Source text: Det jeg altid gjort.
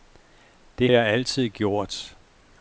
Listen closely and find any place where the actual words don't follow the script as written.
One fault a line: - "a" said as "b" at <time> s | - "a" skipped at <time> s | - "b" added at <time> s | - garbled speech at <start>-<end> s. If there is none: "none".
none